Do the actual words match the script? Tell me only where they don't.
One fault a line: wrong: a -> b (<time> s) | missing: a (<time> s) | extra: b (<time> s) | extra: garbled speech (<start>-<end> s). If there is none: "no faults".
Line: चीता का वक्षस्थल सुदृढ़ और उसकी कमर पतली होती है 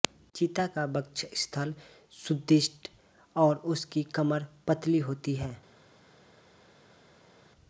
no faults